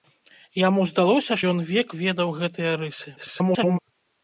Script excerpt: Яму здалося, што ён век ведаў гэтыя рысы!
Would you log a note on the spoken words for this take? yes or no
yes